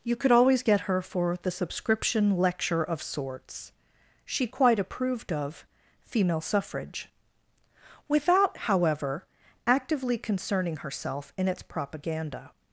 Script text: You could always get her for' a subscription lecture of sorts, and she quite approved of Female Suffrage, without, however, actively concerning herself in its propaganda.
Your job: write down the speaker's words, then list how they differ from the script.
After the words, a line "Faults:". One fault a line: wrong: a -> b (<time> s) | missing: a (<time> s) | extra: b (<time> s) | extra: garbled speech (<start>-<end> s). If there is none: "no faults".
You could always get her for' the subscription lecture of sorts, she quite approved of Female Suffrage, without, however, actively concerning herself in its propaganda.
Faults:
wrong: a -> the (1.4 s)
missing: and (3.7 s)